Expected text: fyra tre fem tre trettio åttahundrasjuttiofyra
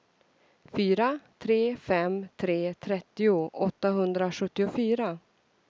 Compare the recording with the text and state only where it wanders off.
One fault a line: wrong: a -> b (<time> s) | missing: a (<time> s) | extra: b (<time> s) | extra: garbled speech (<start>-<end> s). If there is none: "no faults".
no faults